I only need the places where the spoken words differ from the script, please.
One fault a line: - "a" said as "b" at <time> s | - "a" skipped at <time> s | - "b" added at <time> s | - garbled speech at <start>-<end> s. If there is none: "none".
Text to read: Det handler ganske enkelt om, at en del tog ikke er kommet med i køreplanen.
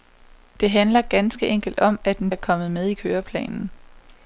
- "del tog ikke" skipped at 2.3 s